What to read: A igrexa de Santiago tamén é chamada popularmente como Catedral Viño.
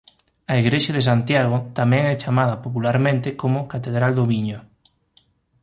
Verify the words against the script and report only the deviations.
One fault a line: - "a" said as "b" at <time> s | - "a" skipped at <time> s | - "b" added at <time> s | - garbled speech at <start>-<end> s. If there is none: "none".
- "do" added at 4.2 s